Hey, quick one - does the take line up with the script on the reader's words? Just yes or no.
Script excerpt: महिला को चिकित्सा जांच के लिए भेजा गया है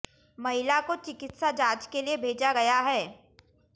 yes